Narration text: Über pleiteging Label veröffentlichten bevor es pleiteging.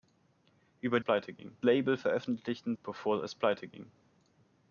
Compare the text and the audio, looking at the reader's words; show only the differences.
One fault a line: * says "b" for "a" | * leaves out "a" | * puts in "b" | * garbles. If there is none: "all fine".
all fine